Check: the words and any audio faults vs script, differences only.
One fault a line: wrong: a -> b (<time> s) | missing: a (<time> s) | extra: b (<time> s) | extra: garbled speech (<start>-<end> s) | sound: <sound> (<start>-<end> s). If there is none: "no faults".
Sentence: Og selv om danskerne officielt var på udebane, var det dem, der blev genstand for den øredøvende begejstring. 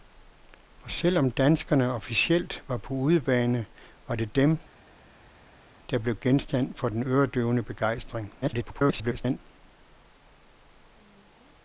extra: garbled speech (8.4-9.4 s)